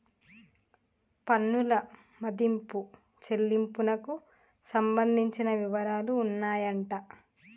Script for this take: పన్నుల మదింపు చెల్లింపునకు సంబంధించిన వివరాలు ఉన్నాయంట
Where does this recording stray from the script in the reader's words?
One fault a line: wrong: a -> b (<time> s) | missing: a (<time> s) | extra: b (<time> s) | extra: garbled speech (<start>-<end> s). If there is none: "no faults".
no faults